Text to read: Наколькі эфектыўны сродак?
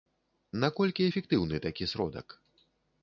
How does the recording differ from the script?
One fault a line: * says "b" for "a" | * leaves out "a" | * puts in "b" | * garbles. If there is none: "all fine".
* puts in "такі"